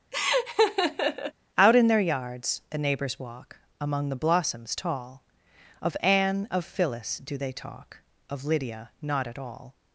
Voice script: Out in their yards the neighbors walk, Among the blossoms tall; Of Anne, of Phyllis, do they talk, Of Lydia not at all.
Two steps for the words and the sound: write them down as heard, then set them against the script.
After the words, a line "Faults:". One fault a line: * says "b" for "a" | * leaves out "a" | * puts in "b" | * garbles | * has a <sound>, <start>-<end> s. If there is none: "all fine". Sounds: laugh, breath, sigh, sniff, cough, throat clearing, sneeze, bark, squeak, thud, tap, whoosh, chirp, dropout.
Out in their yards the neighbors walk, Among the blossoms tall; Of Anne, of Phyllis, do they talk, Of Lydia not at all.
Faults:
* has a laugh, 0.1-1.3 s